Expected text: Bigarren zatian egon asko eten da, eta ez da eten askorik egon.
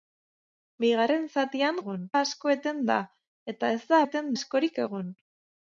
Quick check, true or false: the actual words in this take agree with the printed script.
true